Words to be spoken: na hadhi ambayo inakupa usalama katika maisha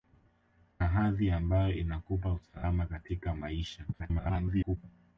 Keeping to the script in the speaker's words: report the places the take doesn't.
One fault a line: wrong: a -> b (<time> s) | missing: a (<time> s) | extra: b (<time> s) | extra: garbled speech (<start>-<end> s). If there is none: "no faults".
extra: garbled speech (3.9-4.8 s)